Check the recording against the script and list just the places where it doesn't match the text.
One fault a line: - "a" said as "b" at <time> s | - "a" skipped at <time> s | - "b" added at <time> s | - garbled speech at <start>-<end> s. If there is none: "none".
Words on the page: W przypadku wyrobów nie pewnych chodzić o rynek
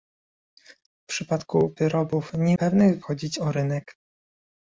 none